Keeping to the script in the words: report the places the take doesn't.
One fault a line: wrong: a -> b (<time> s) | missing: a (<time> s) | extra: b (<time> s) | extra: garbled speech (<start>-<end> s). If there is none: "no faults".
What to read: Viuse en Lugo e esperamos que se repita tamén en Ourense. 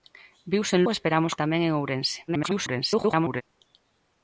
missing: Lugo (0.8 s)
missing: que se repita (1.4 s)
extra: garbled speech (2.3-3.4 s)